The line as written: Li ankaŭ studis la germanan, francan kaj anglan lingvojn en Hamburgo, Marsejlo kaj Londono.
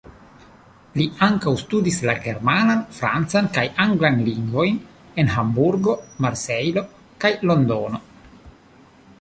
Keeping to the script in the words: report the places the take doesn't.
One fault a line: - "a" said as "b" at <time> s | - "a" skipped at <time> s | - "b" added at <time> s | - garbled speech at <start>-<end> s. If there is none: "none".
none